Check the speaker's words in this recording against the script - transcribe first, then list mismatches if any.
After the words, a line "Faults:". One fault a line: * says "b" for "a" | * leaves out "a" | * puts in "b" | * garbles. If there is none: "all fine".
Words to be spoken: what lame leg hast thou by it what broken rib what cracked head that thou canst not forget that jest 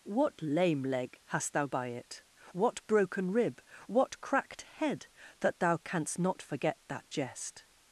what lame leg hast thou by it what broken rib what cracked head that thou canst not forget that jest
Faults:
all fine